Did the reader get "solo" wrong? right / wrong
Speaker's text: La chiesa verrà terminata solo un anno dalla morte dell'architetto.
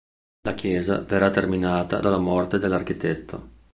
wrong